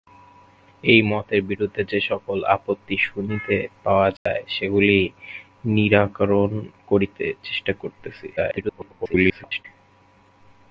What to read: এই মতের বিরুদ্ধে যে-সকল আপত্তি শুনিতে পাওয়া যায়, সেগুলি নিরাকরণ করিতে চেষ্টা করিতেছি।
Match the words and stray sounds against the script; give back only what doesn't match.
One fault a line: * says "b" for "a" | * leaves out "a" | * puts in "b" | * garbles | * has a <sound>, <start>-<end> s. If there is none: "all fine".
* has a dropout, 4.2-4.3 s
* garbles